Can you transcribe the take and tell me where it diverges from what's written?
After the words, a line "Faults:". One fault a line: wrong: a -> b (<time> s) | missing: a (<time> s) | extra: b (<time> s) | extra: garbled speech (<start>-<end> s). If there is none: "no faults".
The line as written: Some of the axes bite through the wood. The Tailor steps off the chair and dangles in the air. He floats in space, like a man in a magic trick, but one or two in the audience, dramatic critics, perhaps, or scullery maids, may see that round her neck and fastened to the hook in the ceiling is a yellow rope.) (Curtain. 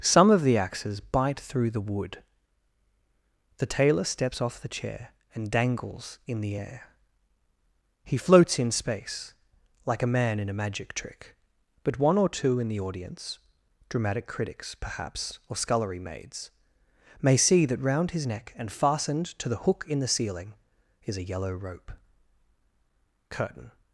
Some of the axes bite through the wood. The Tailor steps off the chair and dangles in the air. He floats in space, like a man in a magic trick, but one or two in the audience, dramatic critics, perhaps, or scullery maids, may see that round his neck and fastened to the hook in the ceiling is a yellow rope.) (Curtain.
Faults:
wrong: her -> his (18.1 s)